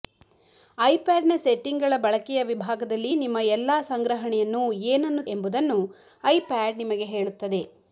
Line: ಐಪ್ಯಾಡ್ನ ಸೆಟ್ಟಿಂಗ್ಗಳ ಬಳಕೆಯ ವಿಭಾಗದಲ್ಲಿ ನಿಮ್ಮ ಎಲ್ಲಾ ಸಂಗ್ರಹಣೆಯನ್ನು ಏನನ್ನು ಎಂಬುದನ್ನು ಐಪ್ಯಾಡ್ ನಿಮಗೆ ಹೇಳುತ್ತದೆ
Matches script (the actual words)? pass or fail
pass